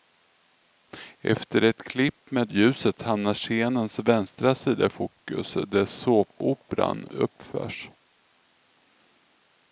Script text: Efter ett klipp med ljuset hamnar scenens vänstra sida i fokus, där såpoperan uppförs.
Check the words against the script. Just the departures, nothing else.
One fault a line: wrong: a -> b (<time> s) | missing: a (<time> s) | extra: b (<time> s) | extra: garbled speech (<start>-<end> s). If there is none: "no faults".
no faults